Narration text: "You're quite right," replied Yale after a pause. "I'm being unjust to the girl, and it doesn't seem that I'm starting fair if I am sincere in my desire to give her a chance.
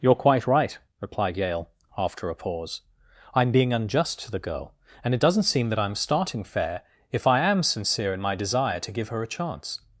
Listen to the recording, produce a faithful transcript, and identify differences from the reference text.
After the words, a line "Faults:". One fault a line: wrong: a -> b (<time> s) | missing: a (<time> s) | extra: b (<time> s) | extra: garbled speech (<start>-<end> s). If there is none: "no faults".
"You're quite right," replied Yale after a pause. "I'm being unjust to the girl, and it doesn't seem that I'm starting fair if I am sincere in my desire to give her a chance.
Faults:
no faults